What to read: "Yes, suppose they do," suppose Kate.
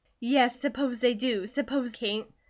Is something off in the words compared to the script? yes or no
no